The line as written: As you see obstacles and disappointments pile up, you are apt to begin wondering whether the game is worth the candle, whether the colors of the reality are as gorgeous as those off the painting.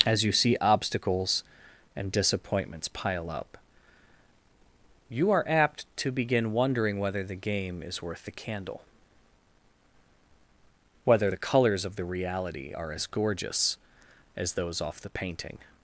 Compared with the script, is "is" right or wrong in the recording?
right